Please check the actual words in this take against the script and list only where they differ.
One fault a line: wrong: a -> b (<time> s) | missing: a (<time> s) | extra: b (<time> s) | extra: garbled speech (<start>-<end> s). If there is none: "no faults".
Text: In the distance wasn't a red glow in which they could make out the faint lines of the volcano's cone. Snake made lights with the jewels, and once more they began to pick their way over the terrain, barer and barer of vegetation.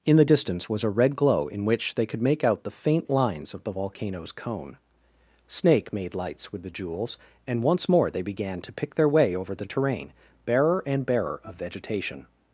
wrong: wasn't -> was (0.7 s)